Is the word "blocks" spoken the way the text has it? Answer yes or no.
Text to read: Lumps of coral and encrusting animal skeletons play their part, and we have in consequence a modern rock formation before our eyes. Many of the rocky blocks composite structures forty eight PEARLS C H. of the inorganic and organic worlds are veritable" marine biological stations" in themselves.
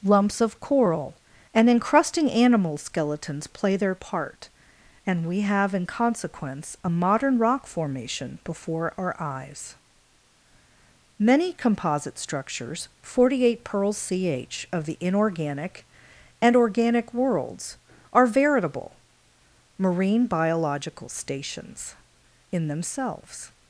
no